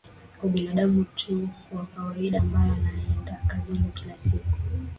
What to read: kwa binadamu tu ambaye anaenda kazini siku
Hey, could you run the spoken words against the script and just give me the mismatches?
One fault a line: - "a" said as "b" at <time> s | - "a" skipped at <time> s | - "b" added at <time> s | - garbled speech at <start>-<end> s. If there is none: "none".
- "wa kawaida" added at 1.7 s
- "kila" added at 3.9 s